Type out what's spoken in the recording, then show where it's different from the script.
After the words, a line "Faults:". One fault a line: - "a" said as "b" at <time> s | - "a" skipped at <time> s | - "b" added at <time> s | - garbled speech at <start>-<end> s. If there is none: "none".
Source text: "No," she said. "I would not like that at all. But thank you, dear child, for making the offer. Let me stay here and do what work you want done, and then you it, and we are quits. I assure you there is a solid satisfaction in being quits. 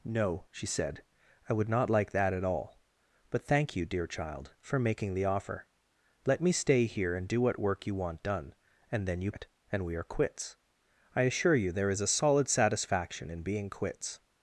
"No," she said. "I would not like that at all. But thank you, dear child, for making the offer. Let me stay here and do what work you want done, and then you it, and we are quits. I assure you there is a solid satisfaction in being quits.
Faults:
none